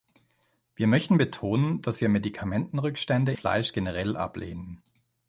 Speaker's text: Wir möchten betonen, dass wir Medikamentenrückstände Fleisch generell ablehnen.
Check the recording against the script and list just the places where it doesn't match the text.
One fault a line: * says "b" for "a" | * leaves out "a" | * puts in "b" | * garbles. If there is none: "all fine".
all fine